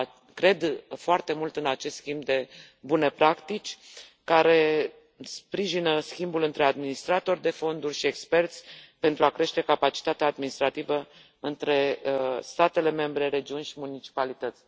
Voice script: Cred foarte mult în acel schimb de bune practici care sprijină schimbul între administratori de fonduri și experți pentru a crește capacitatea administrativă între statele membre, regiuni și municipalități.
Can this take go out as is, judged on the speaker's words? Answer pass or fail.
fail